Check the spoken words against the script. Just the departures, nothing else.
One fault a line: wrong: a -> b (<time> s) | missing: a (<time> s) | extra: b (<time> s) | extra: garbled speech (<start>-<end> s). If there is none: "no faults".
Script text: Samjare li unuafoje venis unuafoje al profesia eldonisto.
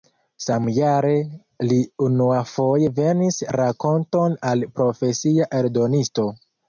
wrong: unuafoje -> rakonton (3.6 s)